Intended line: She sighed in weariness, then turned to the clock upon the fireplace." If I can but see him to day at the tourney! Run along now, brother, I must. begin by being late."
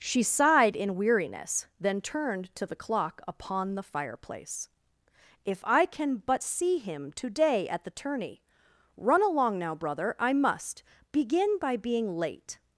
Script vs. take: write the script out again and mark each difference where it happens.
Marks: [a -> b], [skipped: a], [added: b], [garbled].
She sighed in weariness, then turned to the clock upon the fireplace." If I can but see him to day at the tourney! Run along now, brother, I must. begin by being late."